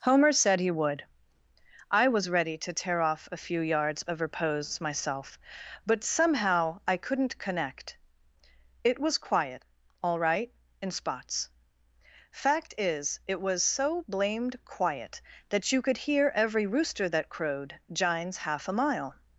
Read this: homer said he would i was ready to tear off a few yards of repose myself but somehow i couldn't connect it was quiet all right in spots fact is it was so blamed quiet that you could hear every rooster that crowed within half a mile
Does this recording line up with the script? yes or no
no